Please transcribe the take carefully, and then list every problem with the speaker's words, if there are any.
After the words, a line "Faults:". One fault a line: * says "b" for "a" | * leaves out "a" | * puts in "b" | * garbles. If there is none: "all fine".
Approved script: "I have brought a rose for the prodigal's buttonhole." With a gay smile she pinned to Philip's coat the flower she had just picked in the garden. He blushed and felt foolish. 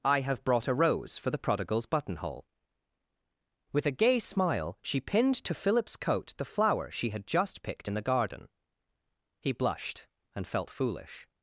"I have brought a rose for the prodigal's buttonhole." With a gay smile she pinned to Philip's coat the flower she had just picked in the garden. He blushed and felt foolish.
Faults:
all fine